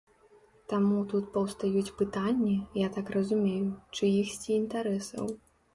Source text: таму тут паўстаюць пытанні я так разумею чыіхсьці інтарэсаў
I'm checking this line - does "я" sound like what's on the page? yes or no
yes